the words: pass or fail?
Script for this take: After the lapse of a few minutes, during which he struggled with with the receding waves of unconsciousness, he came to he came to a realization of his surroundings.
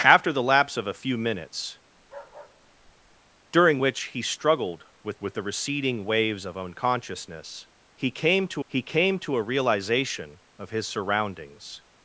pass